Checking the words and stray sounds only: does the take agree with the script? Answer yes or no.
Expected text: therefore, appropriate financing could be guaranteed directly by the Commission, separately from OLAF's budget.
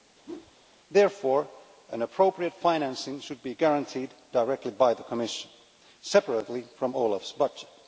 no